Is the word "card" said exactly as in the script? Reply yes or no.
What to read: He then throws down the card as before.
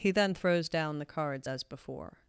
no